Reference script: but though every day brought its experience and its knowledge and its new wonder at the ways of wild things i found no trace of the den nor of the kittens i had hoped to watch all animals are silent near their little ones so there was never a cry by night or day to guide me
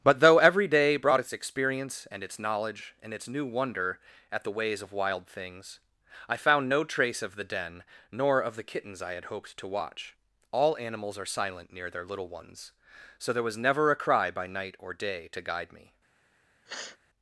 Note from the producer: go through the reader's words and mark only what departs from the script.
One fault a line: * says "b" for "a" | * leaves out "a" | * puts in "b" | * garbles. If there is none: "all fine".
all fine